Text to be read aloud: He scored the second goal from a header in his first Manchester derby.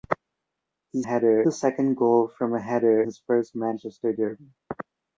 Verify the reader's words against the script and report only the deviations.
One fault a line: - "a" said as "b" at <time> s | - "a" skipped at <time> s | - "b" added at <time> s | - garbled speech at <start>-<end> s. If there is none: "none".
- "scored" said as "header" at 1.0 s
- "in" skipped at 3.0 s